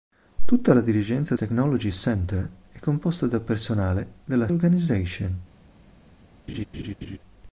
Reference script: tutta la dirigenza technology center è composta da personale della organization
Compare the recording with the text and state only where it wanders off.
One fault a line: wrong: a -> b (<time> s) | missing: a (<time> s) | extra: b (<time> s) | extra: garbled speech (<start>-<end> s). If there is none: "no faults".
no faults